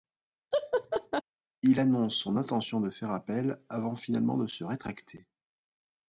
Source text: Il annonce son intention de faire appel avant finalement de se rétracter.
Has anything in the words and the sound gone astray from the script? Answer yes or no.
yes